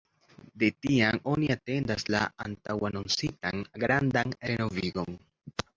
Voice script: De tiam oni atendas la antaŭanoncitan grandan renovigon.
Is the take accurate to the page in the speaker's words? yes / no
yes